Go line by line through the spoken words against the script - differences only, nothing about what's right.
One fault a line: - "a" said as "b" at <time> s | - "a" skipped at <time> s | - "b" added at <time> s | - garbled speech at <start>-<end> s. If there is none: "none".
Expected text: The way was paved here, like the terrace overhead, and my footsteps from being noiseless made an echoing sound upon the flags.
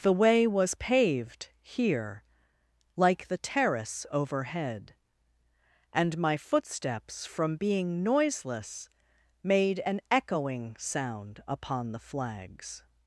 none